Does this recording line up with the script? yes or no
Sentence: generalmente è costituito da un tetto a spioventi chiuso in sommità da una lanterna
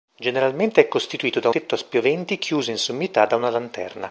no